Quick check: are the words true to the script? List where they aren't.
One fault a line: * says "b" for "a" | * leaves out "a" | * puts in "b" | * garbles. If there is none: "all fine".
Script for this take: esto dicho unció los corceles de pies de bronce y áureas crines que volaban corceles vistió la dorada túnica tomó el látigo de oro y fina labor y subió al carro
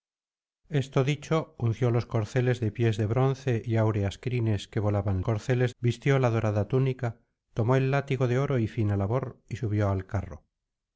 all fine